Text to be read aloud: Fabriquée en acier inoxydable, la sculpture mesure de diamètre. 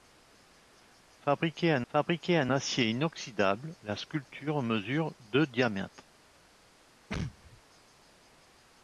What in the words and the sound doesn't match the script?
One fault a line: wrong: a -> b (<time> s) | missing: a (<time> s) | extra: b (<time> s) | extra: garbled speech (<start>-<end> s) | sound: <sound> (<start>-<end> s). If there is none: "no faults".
extra: fabriquée en (1.9 s)
sound: sneeze (7.1-7.6 s)